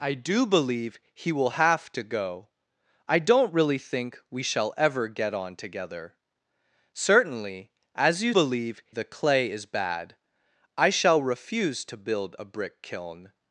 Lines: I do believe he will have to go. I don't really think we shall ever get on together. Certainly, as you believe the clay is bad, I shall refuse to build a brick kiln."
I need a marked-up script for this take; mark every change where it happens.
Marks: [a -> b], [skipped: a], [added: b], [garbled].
I do believe he will have to go. I don't really think we shall ever get on together. Certainly, as you believe the clay is bad, I shall refuse to build a brick kiln."